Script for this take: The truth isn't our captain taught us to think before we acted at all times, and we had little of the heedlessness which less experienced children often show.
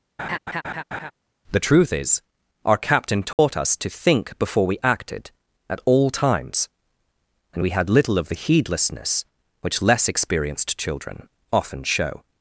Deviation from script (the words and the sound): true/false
true